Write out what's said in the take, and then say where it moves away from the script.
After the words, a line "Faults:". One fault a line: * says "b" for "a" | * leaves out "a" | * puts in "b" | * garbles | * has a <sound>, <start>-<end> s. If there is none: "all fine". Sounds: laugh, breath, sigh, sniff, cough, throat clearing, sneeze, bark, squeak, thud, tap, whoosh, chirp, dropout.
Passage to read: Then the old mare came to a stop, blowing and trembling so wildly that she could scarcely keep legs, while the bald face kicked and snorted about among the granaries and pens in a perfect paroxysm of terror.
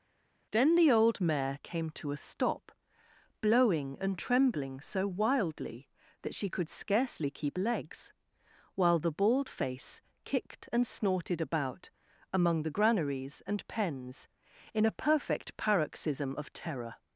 Then the old mare came to a stop, blowing and trembling so wildly that she could scarcely keep legs, while the bald face kicked and snorted about among the granaries and pens in a perfect paroxysm of terror.
Faults:
all fine